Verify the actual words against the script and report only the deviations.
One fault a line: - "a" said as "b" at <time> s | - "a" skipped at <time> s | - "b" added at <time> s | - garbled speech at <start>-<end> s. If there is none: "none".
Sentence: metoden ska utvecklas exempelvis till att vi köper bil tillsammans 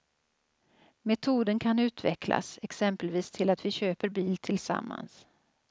- "ska" said as "kan" at 1.6 s